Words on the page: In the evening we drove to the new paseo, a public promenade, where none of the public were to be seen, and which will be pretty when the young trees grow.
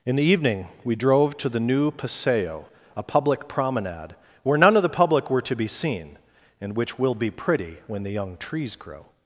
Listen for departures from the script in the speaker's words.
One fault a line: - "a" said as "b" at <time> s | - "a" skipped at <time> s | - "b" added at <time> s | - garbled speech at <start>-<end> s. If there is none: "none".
none